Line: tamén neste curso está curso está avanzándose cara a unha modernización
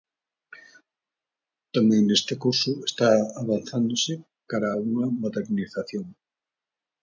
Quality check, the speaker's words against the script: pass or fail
fail